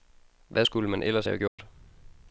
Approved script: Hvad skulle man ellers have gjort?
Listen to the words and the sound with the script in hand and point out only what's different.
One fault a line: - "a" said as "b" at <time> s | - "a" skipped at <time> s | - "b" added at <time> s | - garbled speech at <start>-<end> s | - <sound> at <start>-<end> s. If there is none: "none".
- dropout at 1.5-1.6 s